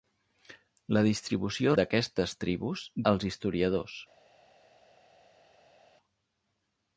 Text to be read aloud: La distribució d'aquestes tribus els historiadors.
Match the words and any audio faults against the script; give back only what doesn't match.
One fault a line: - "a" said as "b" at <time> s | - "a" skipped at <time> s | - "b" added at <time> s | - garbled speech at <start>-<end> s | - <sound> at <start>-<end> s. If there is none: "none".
none